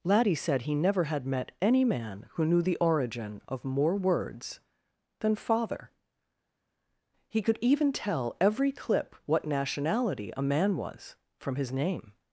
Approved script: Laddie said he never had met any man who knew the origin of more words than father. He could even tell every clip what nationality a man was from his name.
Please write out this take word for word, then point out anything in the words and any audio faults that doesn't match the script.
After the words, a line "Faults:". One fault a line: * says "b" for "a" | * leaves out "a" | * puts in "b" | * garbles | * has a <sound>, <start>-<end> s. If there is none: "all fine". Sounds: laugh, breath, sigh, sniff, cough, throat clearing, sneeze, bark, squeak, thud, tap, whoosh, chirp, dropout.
Laddie said he never had met any man who knew the origin of more words than father. He could even tell every clip what nationality a man was from his name.
Faults:
all fine